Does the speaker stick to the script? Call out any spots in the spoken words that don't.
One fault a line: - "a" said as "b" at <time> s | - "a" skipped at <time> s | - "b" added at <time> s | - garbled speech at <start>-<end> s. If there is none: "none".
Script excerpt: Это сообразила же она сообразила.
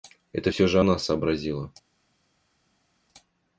- "сообразила" said as "всё" at 0.5 s